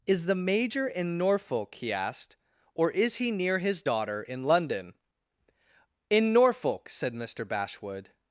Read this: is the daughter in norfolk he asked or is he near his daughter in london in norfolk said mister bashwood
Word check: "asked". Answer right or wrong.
right